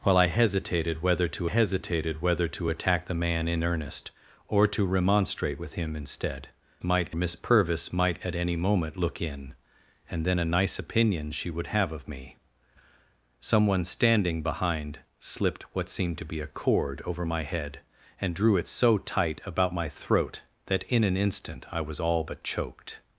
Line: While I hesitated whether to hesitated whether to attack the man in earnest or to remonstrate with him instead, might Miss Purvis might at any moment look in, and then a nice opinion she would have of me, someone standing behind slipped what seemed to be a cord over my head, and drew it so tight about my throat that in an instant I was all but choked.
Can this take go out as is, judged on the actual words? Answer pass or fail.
pass